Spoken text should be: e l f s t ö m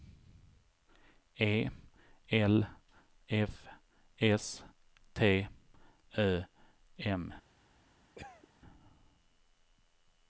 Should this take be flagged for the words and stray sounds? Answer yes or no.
yes